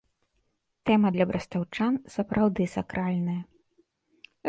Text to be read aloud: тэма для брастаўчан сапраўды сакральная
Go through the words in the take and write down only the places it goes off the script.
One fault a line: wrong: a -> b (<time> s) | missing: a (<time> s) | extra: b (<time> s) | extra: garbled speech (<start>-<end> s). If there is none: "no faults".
no faults